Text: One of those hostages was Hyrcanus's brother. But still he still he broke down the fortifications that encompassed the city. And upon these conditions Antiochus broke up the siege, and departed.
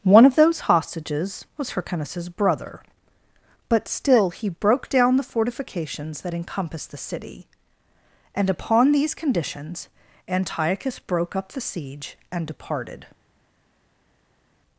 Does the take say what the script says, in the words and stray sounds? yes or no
no